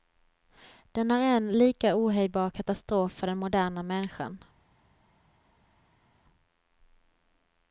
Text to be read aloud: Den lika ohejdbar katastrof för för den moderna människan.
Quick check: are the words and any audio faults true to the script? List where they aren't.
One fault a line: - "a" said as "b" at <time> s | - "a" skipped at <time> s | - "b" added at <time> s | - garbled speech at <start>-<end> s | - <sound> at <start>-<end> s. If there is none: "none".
- "är en" added at 1.1 s
- "för" skipped at 3.3 s